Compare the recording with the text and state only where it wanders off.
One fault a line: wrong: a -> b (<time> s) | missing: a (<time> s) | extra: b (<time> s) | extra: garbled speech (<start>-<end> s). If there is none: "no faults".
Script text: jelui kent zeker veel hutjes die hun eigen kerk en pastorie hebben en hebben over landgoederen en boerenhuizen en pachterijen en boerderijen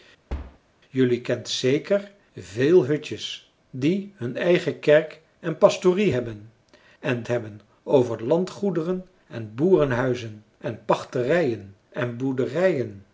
no faults